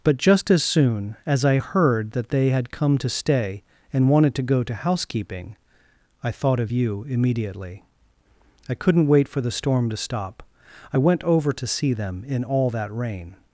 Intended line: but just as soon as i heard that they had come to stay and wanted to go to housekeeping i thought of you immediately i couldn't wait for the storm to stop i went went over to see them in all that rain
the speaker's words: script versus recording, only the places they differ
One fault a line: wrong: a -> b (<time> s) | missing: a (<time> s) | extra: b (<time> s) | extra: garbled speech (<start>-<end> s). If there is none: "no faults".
missing: went (11.2 s)